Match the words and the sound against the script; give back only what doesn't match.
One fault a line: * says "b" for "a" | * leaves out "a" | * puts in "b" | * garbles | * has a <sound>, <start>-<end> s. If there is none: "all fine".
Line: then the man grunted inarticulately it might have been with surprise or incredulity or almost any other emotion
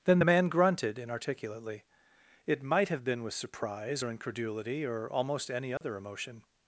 * has a dropout, 5.8-5.8 s